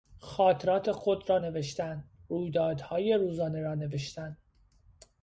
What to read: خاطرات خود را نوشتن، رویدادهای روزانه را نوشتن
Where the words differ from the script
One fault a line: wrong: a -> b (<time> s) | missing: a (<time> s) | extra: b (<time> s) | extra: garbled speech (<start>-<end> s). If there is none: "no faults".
no faults